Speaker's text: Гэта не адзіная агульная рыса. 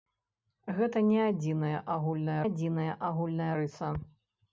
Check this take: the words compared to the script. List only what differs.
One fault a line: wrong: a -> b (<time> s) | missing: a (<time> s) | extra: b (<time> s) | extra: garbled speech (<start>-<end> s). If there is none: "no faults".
extra: адзіная агульная (2.4 s)